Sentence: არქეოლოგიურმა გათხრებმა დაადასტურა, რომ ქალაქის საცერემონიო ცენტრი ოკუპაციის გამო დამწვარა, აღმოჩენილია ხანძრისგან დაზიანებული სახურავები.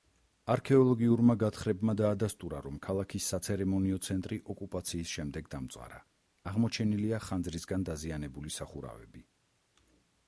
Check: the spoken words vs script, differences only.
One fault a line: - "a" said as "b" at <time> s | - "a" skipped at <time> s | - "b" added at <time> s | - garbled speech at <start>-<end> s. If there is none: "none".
- "გამო" said as "შემდეგ" at 5.2 s